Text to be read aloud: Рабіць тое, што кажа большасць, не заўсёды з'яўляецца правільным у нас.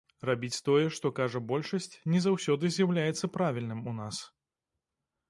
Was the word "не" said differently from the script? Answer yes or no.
no